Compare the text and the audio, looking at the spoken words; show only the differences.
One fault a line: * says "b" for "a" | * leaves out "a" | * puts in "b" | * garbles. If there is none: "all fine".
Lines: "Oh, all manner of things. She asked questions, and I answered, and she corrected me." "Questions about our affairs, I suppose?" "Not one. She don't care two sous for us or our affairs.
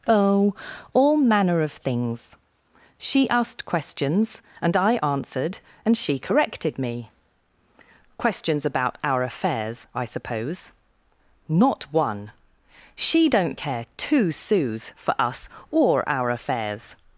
all fine